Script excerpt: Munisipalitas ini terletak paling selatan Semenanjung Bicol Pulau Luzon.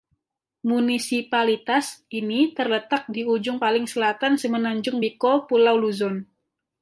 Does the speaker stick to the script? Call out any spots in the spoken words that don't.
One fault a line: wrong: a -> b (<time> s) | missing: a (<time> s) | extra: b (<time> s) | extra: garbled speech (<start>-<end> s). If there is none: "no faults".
extra: di ujung (3.0 s)